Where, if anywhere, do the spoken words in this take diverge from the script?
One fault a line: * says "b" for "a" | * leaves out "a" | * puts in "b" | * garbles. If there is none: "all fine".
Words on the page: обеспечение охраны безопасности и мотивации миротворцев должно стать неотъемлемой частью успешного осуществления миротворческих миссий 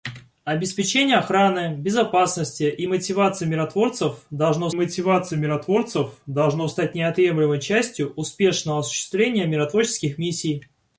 * puts in "мотивации миротворцев должно"